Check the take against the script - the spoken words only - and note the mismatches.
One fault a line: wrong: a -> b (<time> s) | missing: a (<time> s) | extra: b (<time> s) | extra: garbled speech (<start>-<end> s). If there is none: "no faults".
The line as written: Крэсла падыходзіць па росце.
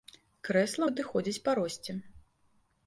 no faults